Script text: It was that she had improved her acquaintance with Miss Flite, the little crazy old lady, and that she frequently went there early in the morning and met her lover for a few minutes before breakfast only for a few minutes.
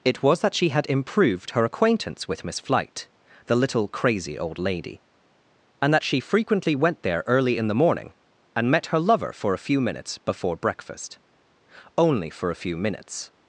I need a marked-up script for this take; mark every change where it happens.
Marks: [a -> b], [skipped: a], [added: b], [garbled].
It was that she had improved her acquaintance with Miss Flite, the little crazy old lady, and that she frequently went there early in the morning and met her lover for a few minutes before breakfast only for a few minutes.